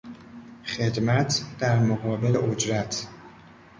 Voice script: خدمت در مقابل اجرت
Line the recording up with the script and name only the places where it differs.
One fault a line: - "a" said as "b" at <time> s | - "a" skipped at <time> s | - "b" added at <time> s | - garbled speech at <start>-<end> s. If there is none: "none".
none